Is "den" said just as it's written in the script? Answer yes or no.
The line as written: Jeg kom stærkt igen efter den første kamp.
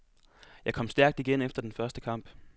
yes